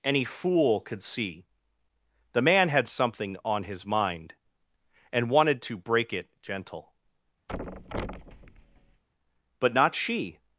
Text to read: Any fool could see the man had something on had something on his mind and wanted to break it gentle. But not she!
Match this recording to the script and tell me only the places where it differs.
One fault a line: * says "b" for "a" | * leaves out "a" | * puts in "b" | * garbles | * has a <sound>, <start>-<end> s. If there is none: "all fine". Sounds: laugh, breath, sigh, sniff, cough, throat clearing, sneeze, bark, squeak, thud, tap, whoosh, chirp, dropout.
* leaves out "had something on"
* has a thud, 7.5-9.0 s